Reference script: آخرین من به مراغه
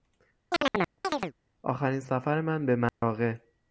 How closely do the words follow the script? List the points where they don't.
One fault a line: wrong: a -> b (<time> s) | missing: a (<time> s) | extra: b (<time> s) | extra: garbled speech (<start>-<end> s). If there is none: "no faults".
extra: سفر (2.0 s)